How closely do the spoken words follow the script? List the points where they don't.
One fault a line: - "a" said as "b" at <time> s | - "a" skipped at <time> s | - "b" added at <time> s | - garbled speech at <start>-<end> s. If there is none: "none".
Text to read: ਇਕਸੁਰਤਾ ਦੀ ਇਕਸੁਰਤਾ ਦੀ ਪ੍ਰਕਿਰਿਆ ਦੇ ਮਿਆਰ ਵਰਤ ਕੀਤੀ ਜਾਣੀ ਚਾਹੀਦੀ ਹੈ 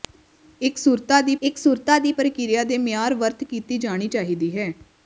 none